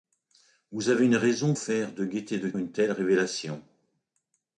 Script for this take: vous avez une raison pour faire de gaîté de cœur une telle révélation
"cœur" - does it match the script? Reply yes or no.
no